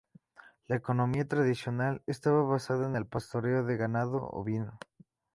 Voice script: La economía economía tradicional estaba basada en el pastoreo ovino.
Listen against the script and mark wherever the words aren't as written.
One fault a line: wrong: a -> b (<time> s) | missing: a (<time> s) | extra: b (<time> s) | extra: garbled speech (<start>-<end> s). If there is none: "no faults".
missing: economía (1.3 s)
extra: de ganado (3.7 s)